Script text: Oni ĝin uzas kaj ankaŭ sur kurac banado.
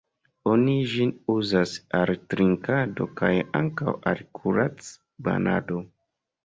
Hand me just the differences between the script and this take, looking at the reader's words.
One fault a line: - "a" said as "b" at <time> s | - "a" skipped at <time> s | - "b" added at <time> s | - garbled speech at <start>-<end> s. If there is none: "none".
- "al trinkado" added at 2.0 s
- "sur" said as "al" at 4.1 s